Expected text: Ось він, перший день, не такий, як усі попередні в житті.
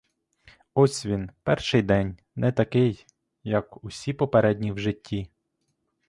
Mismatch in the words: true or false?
false